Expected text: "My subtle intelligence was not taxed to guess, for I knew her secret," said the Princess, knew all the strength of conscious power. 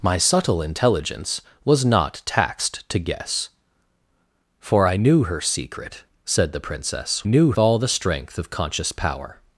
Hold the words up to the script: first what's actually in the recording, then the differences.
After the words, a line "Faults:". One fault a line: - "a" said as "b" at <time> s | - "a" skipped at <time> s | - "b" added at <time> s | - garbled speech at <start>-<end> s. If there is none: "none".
"My subtle intelligence was not taxed to guess, for I knew her secret," said the Princess, knew all the strength of conscious power.
Faults:
none